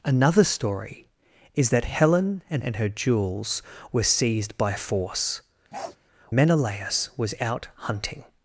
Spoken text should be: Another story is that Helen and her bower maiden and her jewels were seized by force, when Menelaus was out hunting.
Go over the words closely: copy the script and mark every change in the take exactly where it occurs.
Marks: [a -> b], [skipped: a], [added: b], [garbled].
Another story is that Helen and [skipped: her bower maiden] and her jewels were seized by force, [skipped: when] Menelaus was out hunting.